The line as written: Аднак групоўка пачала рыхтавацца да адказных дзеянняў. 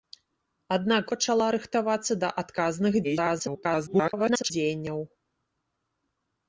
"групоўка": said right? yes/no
no